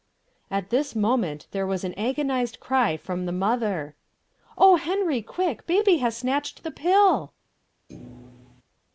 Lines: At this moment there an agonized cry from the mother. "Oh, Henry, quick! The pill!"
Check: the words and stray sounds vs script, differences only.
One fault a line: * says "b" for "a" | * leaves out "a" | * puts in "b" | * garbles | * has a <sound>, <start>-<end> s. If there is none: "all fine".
* puts in "was"
* puts in "Baby has snatched"
* has a thud, 7.9-8.6 s